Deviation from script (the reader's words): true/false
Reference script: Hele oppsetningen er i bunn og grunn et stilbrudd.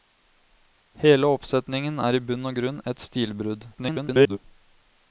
true